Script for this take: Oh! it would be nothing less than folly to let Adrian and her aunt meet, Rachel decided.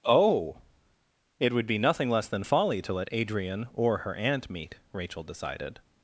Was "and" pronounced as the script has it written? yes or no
no